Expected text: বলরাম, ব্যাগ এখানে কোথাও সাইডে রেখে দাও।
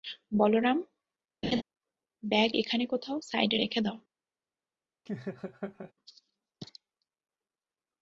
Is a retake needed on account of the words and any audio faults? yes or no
yes